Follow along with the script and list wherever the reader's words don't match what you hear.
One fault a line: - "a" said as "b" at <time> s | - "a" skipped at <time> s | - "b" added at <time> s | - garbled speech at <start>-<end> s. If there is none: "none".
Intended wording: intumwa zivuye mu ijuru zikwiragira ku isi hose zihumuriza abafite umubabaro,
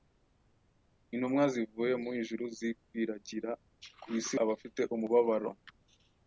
- "hose zihumuriza" skipped at 4.3 s